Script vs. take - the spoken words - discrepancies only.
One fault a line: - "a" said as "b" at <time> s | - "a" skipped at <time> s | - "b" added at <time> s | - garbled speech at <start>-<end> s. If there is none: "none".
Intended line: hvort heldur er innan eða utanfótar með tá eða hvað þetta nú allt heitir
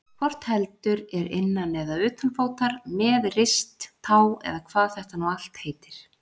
- "rist" added at 3.4 s